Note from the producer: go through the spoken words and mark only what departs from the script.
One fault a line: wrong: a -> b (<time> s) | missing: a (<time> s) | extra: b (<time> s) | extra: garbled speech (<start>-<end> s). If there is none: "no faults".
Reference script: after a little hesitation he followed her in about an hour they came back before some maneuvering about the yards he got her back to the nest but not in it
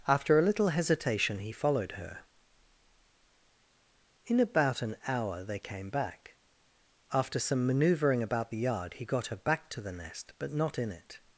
wrong: before -> after (7.1 s)
wrong: yards -> yard (8.6 s)